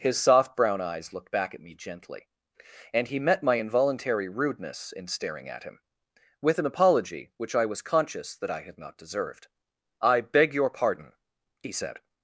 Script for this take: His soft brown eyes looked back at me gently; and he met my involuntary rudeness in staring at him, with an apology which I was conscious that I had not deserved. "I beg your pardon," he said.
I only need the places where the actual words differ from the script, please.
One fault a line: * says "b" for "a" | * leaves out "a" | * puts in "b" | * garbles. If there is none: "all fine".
all fine